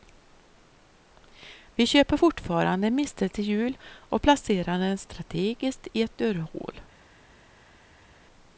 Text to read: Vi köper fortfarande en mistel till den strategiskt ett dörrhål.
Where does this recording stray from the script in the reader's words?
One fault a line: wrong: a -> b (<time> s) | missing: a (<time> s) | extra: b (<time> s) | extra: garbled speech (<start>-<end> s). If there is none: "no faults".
extra: jul och placerar (3.5 s)
extra: i (5.9 s)